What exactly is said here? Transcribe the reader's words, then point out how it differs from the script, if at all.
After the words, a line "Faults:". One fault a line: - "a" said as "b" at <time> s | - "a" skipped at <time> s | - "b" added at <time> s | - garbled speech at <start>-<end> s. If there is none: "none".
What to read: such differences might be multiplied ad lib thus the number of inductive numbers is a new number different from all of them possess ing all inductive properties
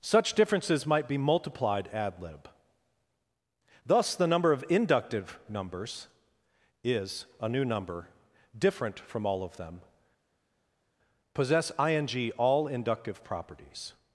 such differences might be multiplied ad lib thus the number of inductive numbers is a new number different from all of them possess ing all inductive properties
Faults:
none